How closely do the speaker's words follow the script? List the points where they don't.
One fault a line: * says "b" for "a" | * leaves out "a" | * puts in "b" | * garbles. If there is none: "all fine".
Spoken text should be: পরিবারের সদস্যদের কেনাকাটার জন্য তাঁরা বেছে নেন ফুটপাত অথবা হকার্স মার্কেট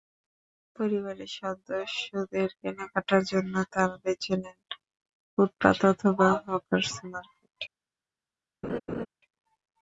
all fine